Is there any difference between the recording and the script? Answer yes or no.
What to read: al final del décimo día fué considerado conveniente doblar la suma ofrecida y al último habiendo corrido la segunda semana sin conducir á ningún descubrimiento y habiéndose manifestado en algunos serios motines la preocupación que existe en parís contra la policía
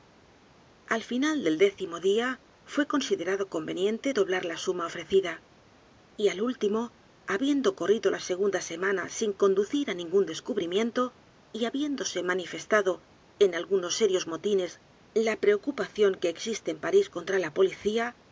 no